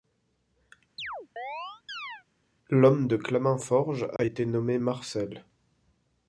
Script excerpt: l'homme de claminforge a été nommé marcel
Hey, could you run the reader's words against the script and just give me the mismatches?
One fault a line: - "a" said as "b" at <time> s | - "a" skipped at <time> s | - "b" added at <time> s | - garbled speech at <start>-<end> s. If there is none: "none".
none